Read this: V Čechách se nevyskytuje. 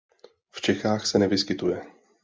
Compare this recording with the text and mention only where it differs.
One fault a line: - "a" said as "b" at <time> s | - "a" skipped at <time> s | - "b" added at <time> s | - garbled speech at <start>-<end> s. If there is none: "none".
none